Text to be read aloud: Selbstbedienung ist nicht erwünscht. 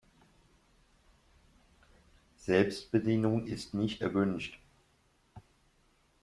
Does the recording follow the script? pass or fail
pass